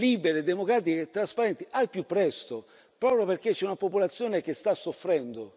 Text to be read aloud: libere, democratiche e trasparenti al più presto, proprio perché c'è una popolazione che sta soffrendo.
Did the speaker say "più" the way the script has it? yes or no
yes